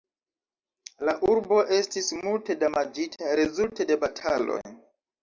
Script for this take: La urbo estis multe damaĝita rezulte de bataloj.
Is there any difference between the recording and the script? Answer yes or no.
no